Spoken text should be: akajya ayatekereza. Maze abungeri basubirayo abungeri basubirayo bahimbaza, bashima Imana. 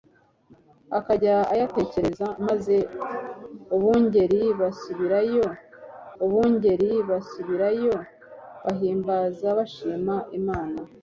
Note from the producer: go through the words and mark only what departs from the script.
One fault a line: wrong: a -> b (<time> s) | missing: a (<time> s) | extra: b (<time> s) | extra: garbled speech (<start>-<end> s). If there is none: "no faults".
no faults